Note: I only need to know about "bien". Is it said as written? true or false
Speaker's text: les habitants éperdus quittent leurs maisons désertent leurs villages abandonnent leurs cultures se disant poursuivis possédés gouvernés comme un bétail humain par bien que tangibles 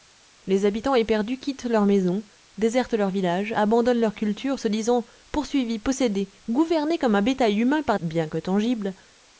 true